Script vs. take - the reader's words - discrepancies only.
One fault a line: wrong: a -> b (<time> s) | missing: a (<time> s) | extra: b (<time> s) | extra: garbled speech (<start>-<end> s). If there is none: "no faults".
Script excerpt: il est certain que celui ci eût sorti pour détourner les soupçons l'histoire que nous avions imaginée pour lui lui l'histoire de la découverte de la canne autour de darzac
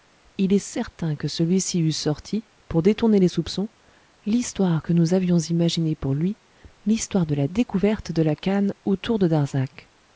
missing: lui (6.4 s)